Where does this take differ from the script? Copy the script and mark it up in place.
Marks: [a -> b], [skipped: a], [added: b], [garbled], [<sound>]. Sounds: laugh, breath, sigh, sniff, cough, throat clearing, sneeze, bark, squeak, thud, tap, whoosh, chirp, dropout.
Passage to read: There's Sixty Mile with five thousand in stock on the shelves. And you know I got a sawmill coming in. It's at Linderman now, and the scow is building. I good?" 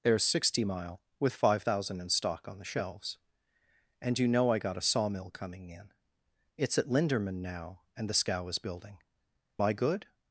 There's Sixty Mile with five thousand in stock on the shelves. And you know I got a sawmill coming in. It's at Linderman now, and the scow is building. I good?"